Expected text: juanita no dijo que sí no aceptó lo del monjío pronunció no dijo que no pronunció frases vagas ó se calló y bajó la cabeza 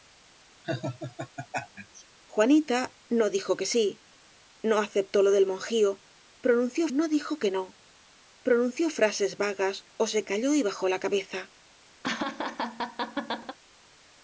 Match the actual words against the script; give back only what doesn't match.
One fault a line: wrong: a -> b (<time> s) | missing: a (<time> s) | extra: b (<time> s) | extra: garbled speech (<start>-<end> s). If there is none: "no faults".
no faults